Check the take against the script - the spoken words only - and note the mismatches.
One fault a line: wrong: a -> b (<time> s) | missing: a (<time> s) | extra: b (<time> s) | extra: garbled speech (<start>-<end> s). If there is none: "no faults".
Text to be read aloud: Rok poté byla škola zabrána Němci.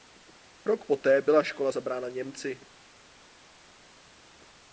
no faults